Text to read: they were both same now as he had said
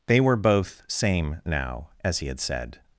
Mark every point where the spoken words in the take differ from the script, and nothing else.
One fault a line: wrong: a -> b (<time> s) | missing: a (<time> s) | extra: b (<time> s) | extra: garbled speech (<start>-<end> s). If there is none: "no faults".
no faults